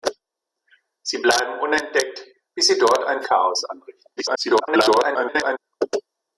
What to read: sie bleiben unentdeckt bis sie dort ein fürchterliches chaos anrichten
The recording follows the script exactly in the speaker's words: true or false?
false